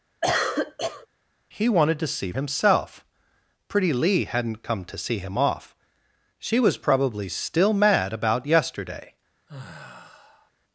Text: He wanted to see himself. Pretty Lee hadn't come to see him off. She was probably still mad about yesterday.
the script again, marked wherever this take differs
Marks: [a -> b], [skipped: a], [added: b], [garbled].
He wanted to see himself. Pretty Lee hadn't come to see him off. She was probably still mad about yesterday.